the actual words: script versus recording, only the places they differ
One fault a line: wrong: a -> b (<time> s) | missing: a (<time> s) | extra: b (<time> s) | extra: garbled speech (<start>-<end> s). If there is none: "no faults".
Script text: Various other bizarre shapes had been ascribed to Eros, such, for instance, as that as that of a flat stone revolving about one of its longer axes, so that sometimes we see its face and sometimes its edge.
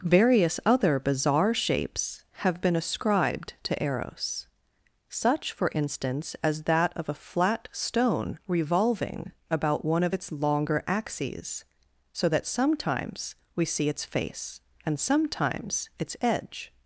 wrong: had -> have (2.4 s)
missing: as that (6.9 s)